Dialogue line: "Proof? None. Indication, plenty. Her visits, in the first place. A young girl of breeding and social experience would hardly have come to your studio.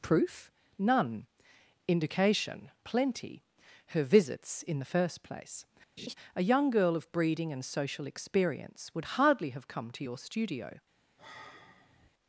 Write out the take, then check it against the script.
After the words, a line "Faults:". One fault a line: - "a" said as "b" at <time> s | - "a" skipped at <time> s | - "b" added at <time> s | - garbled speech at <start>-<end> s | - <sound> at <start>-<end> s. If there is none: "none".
"Proof? None. Indication, plenty. Her visits, in the first place. A young girl of breeding and social experience would hardly have come to your studio.
Faults:
- laugh at 6.0-6.1 s
- sigh at 11.2-12.1 s